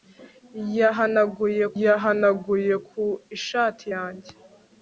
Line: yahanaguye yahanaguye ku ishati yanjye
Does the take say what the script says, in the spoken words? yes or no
yes